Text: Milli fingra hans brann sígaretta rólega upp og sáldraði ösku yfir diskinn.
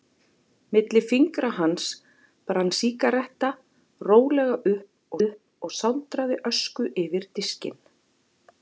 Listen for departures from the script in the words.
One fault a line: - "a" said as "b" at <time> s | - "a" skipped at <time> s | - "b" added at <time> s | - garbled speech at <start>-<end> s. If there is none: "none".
- "upp" added at 5.3 s